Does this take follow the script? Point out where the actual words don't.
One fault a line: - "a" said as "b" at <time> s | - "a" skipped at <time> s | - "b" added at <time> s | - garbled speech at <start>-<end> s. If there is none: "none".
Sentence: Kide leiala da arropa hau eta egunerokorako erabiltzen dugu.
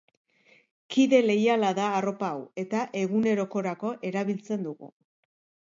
none